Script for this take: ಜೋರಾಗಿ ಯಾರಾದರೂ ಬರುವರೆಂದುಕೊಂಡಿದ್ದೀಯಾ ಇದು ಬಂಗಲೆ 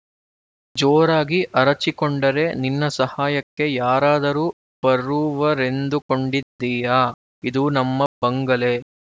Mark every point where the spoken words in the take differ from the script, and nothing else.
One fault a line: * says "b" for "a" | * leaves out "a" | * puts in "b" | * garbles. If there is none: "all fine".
* puts in "ಅರಚಿಕೊಂಡರೆ ನಿನ್ನ ಸಹಾಯಕ್ಕೆ"
* puts in "ನಮ್ಮ"